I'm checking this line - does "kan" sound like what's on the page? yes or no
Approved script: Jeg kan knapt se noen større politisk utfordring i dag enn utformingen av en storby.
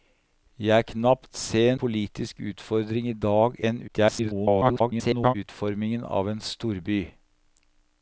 no